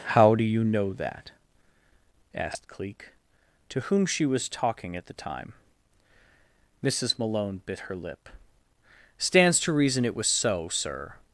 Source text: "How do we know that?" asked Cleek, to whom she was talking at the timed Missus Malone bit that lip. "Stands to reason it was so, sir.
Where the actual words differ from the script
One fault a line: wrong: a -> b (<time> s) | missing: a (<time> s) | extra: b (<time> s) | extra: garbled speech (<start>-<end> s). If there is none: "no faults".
wrong: we -> you (0.4 s)
wrong: timed -> time (5.1 s)
wrong: that -> her (7.8 s)